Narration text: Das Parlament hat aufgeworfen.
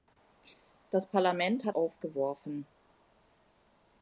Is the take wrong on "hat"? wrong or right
right